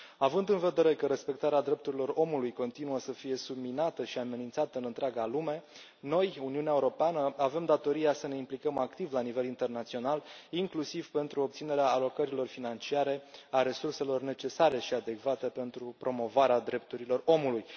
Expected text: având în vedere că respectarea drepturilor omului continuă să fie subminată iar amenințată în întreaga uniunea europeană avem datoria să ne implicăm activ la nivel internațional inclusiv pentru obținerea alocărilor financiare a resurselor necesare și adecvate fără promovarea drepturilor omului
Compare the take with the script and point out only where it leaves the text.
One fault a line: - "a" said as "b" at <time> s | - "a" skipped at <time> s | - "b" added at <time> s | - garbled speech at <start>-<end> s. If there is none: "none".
- "iar" said as "și" at 4.0 s
- "lume noi" added at 5.2 s
- "fără" said as "pentru" at 15.5 s